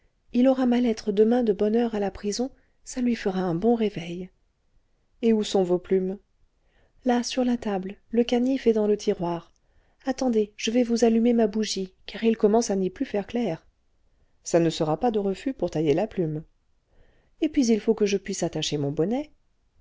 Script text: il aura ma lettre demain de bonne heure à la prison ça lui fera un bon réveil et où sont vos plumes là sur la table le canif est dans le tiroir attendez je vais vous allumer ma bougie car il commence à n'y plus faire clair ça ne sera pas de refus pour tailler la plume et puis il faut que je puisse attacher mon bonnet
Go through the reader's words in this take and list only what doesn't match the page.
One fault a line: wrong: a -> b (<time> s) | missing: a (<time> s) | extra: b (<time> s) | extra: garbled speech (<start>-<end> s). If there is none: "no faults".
no faults